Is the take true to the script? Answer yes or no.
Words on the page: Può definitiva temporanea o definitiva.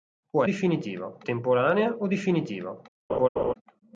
yes